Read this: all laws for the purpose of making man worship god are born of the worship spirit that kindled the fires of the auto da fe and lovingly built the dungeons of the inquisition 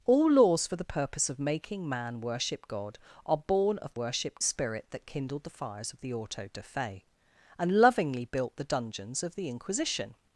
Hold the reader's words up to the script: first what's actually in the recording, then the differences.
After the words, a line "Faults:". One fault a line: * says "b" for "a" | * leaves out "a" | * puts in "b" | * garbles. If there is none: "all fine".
all laws for the purpose of making man worship god are born of the worship spirit that kindled the fires of the auto da fe and lovingly built the dungeons of the inquisition
Faults:
all fine